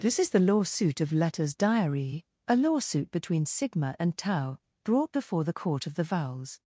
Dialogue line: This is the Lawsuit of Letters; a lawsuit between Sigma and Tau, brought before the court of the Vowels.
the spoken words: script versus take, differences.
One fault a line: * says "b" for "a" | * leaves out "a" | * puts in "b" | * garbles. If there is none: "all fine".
* puts in "diary"